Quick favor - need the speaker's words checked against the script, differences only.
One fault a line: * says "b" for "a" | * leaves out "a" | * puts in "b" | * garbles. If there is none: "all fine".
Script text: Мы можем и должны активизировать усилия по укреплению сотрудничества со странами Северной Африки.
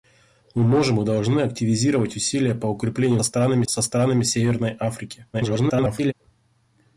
* says "странами" for "сотрудничества"
* garbles